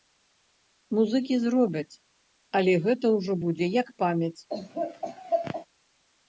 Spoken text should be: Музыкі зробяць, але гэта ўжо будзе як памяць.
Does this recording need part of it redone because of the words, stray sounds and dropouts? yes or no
yes